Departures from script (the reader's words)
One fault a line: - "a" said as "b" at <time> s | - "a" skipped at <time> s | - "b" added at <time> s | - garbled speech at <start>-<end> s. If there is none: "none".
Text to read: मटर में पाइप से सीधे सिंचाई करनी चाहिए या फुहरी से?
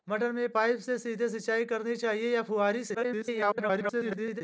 - garbled speech at 2.9-4.4 s